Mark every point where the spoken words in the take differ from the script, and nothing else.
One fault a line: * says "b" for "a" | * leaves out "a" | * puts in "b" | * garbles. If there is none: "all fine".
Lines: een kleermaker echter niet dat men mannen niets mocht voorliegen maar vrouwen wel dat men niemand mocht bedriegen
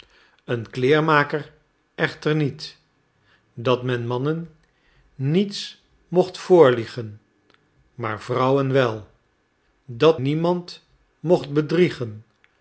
* leaves out "men"